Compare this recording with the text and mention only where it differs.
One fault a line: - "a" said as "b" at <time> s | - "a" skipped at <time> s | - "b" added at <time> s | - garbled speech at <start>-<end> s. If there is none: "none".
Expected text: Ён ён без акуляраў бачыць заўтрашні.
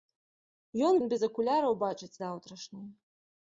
none